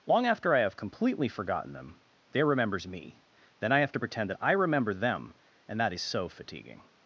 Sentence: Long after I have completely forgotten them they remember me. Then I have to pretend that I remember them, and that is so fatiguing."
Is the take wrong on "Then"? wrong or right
right